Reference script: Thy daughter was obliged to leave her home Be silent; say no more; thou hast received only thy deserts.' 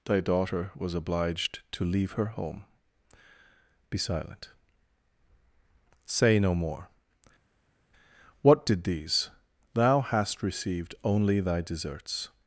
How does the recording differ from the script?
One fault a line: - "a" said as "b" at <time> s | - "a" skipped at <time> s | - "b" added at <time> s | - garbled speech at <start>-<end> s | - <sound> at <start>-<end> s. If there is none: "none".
- "what did these" added at 8.4 s